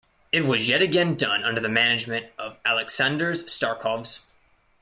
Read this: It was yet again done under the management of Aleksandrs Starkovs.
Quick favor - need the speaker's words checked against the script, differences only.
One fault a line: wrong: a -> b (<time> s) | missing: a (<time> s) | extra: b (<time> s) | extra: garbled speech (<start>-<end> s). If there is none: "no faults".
no faults